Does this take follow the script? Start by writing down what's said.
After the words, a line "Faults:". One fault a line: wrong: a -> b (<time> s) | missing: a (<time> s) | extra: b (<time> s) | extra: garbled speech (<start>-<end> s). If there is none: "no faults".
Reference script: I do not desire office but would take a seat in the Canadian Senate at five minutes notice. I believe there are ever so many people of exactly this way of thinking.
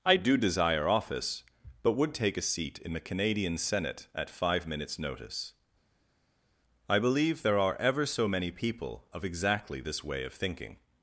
I do desire office but would take a seat in the Canadian Senate at five minutes notice. I believe there are ever so many people of exactly this way of thinking.
Faults:
missing: not (0.3 s)